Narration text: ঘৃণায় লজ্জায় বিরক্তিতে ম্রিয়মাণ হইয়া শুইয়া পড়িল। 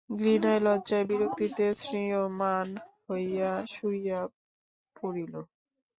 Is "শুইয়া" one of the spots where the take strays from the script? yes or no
no